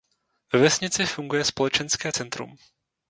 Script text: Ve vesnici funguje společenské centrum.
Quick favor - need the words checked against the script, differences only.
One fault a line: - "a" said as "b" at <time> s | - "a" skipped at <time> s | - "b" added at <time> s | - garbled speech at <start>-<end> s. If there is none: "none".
none